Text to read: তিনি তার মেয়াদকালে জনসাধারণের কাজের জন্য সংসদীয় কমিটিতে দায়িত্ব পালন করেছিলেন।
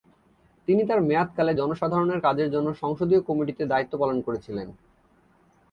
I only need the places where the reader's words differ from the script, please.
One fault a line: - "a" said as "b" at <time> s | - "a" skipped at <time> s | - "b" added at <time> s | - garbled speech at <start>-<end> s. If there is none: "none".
none